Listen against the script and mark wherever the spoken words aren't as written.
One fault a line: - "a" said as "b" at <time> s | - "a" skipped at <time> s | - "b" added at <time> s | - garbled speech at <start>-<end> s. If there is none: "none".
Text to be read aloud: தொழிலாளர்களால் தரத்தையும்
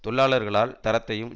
none